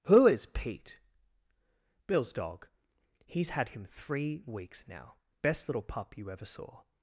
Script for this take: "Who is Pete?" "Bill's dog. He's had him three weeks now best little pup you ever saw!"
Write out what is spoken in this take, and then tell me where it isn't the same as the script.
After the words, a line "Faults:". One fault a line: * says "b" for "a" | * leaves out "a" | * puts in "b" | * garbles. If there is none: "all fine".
"Who is Pete?" "Bill's dog. He's had him three weeks now best little pup you ever saw!"
Faults:
all fine